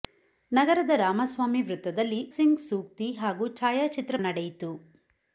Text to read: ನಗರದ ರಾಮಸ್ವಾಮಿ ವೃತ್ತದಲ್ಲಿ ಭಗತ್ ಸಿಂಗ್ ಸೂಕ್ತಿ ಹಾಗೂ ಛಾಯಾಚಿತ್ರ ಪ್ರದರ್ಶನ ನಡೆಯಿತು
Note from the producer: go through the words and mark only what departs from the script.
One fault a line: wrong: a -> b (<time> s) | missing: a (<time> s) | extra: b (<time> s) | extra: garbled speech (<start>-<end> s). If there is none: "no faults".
missing: ಭಗತ್ (2.3 s)
missing: ಪ್ರದರ್ಶನ (4.1 s)